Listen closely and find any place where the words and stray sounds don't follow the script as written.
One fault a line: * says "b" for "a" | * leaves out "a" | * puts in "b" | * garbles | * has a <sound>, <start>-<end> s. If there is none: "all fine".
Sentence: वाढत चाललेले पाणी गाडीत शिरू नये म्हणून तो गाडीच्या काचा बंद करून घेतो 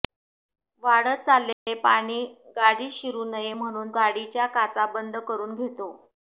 * has a dropout, 1.5-1.7 s
* leaves out "तो"